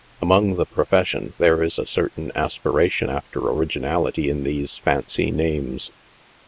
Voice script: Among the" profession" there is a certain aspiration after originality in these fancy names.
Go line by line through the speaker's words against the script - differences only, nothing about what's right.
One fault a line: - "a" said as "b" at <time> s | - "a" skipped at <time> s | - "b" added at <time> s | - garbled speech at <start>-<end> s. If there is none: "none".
none